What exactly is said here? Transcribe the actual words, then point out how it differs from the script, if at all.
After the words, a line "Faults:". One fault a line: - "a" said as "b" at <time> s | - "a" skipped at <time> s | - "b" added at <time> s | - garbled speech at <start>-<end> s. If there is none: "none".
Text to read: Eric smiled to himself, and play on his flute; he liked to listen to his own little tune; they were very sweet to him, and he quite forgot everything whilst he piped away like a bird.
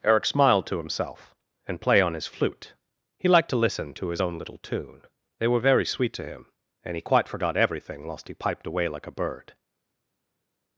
Eric smiled to himself, and play on his flute; he liked to listen to his own little tune; they were very sweet to him, and he quite forgot everything whilst he piped away like a bird.
Faults:
none